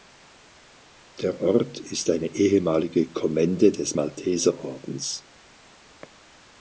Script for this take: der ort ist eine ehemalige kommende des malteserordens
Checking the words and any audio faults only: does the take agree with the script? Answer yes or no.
yes